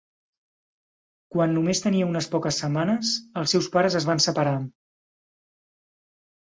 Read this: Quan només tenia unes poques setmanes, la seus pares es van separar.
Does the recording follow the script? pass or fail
fail